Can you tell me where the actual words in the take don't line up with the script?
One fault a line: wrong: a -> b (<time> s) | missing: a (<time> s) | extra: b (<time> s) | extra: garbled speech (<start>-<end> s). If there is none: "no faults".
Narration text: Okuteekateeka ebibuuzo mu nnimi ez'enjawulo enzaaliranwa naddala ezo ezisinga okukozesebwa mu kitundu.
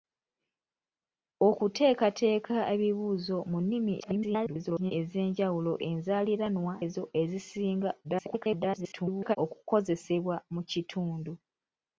extra: garbled speech (4.0-4.9 s)
missing: naddala (6.7 s)
extra: garbled speech (8.0-9.4 s)